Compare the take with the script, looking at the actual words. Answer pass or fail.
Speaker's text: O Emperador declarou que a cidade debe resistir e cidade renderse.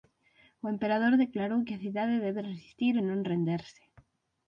fail